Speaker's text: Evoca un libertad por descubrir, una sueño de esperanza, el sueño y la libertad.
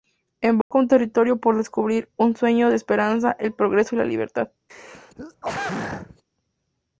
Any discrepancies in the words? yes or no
yes